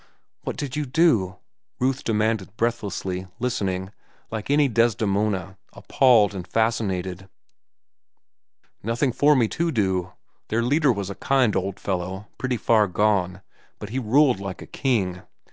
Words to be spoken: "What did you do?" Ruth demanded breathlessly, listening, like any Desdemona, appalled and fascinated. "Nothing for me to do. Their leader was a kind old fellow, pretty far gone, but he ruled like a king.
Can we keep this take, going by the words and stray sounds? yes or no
yes